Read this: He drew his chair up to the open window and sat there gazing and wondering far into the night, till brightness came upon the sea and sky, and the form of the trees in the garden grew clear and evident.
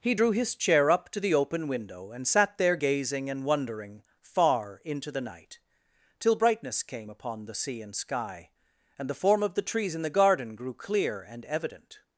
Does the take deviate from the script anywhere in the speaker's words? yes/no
no